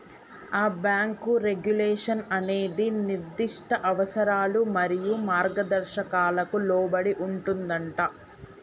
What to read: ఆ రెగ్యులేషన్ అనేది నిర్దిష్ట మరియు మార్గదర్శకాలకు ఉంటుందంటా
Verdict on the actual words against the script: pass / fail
fail